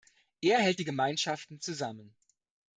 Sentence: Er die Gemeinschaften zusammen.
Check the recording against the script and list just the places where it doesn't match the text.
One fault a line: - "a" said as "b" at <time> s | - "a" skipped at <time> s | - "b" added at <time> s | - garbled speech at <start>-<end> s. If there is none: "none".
- "hält" added at 0.6 s